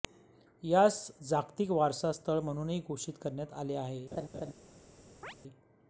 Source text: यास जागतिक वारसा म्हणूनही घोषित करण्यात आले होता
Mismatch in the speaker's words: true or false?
true